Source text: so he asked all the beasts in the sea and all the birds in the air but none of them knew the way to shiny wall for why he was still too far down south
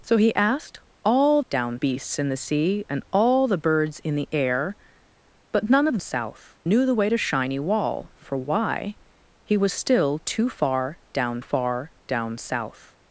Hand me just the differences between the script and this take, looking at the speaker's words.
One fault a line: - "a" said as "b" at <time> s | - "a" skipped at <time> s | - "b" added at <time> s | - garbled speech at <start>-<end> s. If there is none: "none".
- "the" said as "down" at 1.5 s
- "them" said as "south" at 6.0 s
- "far down" added at 11.4 s